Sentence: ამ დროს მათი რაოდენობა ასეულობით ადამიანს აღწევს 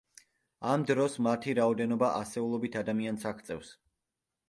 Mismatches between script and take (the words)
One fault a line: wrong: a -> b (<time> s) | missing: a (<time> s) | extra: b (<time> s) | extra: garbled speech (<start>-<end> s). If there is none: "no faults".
no faults